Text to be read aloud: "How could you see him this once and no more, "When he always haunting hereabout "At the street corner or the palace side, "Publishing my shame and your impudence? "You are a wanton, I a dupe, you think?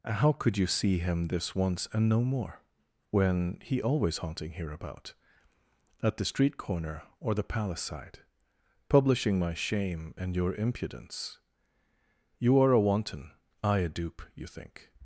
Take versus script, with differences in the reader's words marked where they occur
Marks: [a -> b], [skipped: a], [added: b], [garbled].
"How could you see him this once and no more, "When he always haunting hereabout "At the street corner or the palace side, "Publishing my shame and your impudence? "You are a wanton, I a dupe, you think?